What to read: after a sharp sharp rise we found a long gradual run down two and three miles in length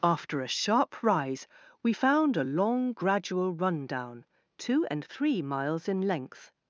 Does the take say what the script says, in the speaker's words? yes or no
no